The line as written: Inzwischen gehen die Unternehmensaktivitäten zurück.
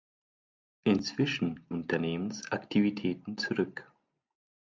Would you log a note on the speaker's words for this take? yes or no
yes